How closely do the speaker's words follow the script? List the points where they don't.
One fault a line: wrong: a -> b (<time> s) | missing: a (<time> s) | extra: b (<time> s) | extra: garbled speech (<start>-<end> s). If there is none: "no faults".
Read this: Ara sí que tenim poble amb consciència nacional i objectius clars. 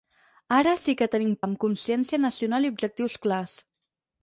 missing: poble (1.3 s)